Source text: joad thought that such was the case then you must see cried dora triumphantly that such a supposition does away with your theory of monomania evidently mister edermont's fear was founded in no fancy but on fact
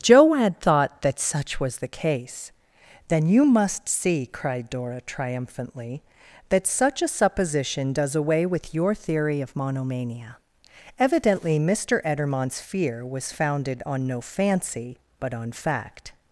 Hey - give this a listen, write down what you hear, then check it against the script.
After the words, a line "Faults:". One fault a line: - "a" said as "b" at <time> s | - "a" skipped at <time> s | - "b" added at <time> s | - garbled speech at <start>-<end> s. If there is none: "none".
joad thought that such was the case then you must see cried dora triumphantly that such a supposition does away with your theory of monomania evidently mister edermont's fear was founded on no fancy but on fact
Faults:
- "in" said as "on" at 13.9 s